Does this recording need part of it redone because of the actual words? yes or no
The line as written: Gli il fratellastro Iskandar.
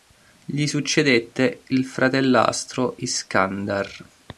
yes